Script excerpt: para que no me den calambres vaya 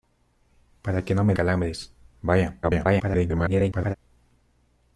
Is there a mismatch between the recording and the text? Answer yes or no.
yes